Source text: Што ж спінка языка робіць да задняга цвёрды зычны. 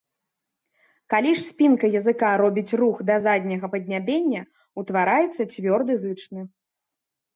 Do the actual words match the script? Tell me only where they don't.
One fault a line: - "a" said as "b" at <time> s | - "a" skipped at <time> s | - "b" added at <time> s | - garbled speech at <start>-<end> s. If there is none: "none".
- "Што" said as "Калі" at 1.1 s
- "рух" added at 2.8 s
- "паднябення утвараецца" added at 3.7 s